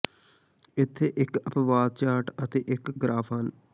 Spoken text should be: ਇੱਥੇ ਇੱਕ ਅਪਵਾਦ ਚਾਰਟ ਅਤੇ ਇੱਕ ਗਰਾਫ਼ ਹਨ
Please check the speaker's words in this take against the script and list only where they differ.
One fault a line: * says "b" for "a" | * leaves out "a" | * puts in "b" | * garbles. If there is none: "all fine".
all fine